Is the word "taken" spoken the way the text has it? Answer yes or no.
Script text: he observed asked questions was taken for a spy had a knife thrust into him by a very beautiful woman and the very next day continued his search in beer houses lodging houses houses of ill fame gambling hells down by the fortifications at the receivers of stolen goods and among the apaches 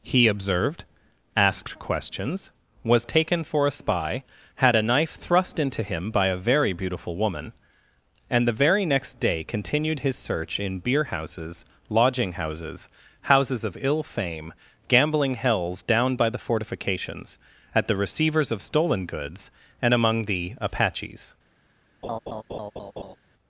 yes